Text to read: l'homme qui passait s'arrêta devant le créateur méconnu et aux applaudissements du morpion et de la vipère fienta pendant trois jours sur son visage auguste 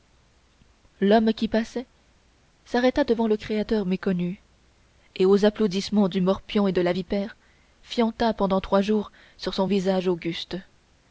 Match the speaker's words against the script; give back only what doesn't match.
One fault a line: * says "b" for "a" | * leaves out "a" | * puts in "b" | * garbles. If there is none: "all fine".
all fine